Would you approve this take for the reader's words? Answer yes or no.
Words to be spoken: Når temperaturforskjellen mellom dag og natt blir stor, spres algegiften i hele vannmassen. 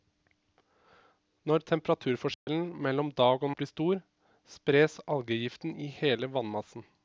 no